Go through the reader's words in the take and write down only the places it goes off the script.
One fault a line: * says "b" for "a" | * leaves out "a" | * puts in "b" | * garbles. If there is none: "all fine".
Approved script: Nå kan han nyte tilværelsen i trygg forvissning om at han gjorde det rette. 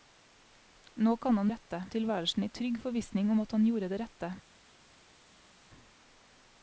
* says "rette" for "nyte"